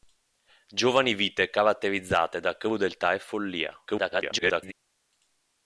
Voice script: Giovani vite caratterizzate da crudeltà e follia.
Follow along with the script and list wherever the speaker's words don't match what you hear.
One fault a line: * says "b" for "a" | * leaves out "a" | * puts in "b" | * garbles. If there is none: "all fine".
* garbles